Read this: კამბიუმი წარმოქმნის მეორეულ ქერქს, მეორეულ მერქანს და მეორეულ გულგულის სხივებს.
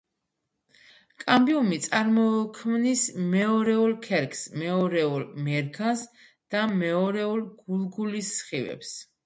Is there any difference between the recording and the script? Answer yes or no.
no